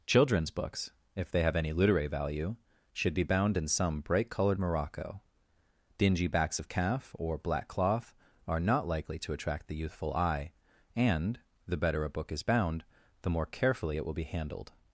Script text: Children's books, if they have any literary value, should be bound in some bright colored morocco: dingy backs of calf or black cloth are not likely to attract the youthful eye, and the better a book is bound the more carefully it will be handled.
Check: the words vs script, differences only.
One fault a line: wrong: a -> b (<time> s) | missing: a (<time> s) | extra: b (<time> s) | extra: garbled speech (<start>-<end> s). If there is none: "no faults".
no faults